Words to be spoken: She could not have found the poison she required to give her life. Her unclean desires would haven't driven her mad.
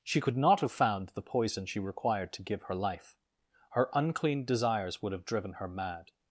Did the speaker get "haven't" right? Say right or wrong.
wrong